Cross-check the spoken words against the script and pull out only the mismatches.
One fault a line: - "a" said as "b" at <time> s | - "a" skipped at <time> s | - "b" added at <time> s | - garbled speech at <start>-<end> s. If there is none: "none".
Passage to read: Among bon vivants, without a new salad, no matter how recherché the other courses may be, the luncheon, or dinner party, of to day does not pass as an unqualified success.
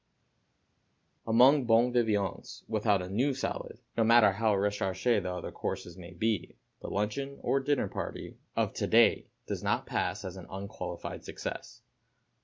none